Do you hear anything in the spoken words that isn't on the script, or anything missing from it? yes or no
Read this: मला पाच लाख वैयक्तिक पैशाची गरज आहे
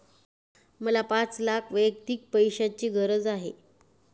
no